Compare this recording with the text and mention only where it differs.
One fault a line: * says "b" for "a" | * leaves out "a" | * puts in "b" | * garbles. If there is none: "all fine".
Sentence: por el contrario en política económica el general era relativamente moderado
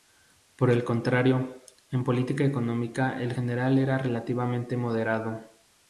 all fine